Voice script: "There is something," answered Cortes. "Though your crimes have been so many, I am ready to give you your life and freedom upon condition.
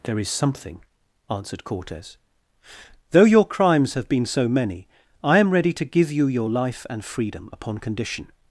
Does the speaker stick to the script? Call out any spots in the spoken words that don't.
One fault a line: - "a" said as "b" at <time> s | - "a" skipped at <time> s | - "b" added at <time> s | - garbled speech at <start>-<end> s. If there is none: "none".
none